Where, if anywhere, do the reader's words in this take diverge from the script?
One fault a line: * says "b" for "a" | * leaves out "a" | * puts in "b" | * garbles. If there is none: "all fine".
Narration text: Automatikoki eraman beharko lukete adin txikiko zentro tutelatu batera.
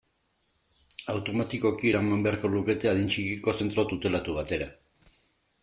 all fine